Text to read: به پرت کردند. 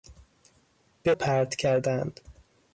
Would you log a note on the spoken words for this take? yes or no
no